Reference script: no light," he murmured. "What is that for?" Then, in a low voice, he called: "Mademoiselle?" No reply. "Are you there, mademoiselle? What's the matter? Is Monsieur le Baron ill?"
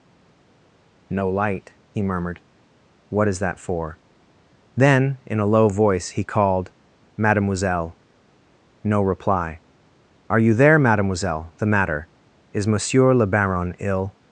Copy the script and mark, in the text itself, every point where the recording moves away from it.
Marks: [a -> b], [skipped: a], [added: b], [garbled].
no light," he murmured. "What is that for?" Then, in a low voice, he called: "Mademoiselle?" No reply. "Are you there, mademoiselle? [skipped: What's] the matter? Is Monsieur le Baron ill?"